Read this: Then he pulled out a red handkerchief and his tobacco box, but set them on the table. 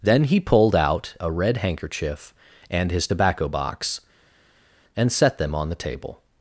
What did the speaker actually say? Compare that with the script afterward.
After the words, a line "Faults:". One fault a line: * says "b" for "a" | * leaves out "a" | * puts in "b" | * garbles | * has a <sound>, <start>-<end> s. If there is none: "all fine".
Then he pulled out a red handkerchief and his tobacco box, and set them on the table.
Faults:
* says "and" for "but"